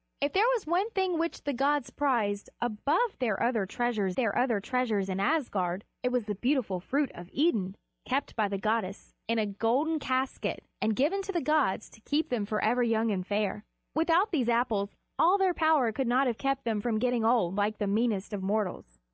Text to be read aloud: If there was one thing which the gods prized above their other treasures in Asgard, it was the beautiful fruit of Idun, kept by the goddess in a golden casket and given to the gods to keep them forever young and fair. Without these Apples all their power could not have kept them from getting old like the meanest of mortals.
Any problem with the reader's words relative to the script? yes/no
yes